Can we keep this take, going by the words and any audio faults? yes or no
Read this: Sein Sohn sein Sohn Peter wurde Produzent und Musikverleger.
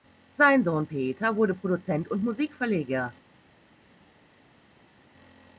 no